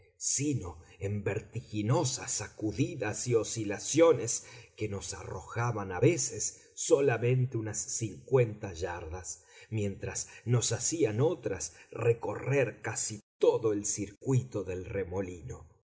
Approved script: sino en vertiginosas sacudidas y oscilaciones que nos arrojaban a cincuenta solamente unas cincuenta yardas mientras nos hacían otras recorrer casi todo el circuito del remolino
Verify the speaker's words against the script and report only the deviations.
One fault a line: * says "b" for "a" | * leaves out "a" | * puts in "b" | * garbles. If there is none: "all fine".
* says "veces" for "cincuenta"